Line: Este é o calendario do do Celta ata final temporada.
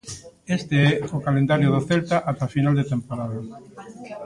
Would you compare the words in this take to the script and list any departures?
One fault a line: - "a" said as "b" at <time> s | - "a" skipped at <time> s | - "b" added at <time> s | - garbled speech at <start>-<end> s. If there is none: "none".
- "do" skipped at 1.8 s
- "de" added at 2.8 s